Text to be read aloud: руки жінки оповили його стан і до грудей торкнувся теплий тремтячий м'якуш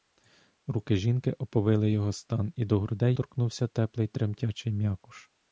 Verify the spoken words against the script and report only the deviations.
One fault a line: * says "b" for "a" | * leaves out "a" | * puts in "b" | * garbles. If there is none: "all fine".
all fine